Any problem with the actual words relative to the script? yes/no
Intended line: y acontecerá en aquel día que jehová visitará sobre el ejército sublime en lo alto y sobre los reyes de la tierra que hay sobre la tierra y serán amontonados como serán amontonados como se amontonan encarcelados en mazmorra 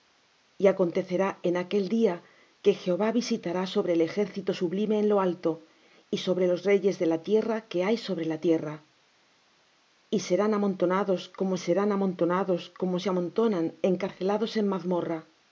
no